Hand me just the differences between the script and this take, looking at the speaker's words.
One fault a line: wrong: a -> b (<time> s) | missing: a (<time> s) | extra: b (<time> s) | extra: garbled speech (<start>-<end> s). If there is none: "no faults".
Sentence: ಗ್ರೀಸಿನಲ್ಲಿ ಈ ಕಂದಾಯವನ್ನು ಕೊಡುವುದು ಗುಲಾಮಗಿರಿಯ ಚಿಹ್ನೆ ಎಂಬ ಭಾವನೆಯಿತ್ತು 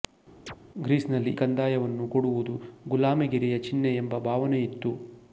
missing: ಈ (1.3 s)